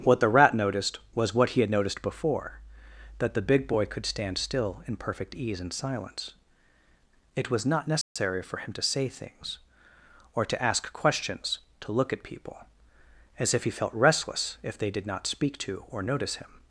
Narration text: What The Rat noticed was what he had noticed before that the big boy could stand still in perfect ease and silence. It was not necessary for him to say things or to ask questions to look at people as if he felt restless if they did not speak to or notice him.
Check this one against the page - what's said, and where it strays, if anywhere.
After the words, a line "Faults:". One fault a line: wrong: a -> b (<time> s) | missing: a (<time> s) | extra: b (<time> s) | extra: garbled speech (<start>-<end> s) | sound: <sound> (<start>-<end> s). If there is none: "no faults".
What The Rat noticed was what he had noticed before that the big boy could stand still in perfect ease and silence. It was not necessary for him to say things or to ask questions to look at people as if he felt restless if they did not speak to or notice him.
Faults:
sound: dropout (8.0-8.2 s)